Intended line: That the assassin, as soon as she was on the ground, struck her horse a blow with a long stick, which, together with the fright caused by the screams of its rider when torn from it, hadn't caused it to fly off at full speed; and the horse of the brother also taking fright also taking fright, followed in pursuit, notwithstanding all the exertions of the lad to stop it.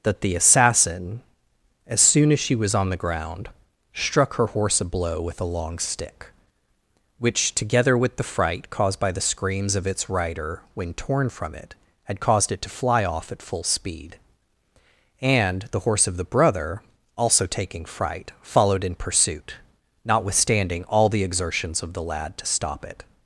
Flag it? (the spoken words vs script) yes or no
yes